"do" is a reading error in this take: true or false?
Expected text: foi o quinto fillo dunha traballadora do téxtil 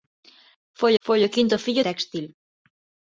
true